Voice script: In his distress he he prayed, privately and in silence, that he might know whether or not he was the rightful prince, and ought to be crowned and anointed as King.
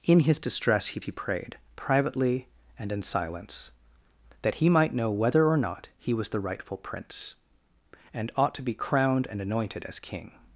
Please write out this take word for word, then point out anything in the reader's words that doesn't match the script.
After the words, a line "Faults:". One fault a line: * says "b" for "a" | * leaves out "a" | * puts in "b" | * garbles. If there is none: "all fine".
In his distress he he prayed, privately and in silence, that he might know whether or not he was the rightful prince, and ought to be crowned and anointed as King.
Faults:
all fine